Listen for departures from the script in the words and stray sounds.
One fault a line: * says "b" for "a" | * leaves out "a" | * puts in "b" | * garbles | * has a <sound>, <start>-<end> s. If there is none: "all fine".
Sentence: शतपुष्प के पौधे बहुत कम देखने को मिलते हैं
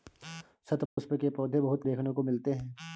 * has a dropout, 0.9-1.0 s
* leaves out "कम"